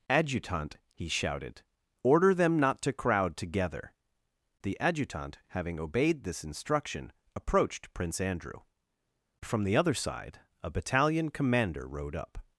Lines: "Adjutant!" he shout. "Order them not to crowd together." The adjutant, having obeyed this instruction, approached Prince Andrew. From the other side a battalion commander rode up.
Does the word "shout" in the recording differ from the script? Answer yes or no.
yes